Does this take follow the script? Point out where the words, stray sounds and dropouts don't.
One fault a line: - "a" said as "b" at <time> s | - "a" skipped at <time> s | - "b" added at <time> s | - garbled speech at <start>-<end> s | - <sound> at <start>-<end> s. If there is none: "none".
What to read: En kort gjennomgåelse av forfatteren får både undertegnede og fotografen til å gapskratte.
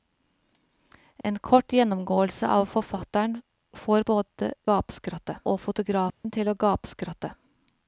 - dropout at 1.2-1.2 s
- "undertegnede" said as "gapskratte" at 4.7 s
- dropout at 6.1-6.2 s